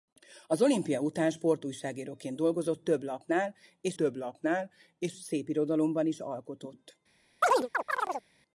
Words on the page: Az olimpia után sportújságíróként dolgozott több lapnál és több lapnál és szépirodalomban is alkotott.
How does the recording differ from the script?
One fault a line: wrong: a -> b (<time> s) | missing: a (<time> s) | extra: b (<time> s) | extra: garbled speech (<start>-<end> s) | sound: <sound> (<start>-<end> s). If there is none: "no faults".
sound: chirp (7.4-8.3 s)